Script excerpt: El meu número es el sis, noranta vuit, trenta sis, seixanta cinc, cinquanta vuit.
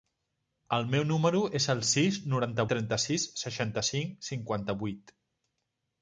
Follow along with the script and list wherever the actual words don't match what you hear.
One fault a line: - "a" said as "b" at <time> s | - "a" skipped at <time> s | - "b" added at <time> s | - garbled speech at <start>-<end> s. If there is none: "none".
- "vuit" skipped at 2.7 s